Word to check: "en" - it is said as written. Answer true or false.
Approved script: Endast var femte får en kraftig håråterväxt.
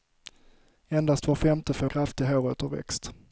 false